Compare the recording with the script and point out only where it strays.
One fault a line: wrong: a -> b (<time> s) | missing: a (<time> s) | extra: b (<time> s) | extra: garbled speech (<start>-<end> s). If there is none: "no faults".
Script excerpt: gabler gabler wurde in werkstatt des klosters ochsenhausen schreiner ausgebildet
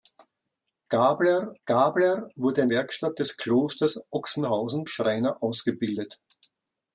no faults